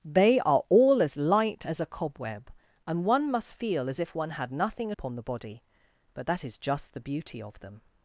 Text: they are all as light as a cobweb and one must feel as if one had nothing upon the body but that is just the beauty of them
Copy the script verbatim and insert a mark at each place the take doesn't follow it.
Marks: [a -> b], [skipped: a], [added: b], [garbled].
they are all as light as a cobweb and one must feel as if one had nothing upon the body but that is just the beauty of them